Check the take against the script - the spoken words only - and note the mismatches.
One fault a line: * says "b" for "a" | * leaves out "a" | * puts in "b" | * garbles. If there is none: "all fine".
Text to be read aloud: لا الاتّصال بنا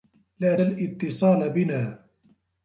all fine